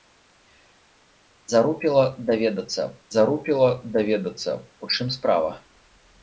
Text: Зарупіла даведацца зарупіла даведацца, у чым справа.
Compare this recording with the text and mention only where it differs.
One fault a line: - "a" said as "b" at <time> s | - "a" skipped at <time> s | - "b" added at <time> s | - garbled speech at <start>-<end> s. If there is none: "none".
none